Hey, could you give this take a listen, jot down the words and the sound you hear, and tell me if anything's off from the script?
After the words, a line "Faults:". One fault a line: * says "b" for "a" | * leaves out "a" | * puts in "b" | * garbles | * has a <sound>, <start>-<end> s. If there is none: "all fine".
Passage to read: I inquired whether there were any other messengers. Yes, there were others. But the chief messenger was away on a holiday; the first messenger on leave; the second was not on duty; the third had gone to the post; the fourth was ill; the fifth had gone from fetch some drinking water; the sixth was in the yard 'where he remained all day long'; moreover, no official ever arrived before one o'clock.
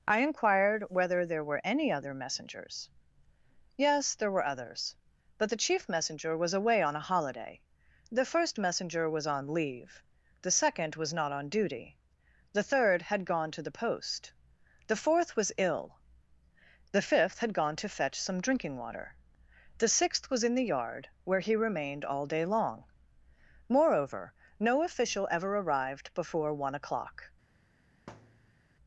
I inquired whether there were any other messengers. Yes, there were others. But the chief messenger was away on a holiday; the first messenger was on leave; the second was not on duty; the third had gone to the post; the fourth was ill; the fifth had gone to fetch some drinking water; the sixth was in the yard 'where he remained all day long'; moreover, no official ever arrived before one o'clock.
Faults:
* puts in "was"
* says "to" for "from"
* has a thud, 28.1-28.6 s